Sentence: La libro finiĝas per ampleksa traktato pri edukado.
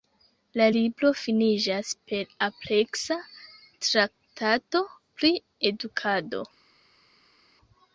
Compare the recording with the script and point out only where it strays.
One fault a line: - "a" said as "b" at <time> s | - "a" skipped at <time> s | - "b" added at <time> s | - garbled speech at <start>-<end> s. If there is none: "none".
none